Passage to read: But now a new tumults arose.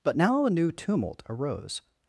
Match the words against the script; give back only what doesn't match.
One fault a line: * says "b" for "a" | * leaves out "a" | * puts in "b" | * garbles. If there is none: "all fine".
* says "tumult" for "tumults"